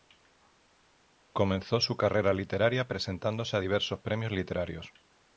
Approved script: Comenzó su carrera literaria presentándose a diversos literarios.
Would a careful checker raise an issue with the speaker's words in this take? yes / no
yes